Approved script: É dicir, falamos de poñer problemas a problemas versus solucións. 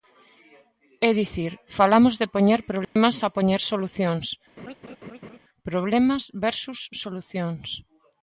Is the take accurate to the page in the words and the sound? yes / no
no